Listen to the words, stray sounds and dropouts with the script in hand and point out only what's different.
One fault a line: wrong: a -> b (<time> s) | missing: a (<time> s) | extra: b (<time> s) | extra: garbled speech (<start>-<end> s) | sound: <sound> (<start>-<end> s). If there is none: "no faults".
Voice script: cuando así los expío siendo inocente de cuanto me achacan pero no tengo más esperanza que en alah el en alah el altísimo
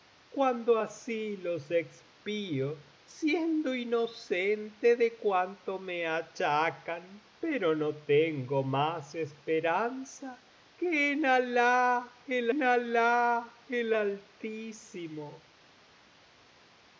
no faults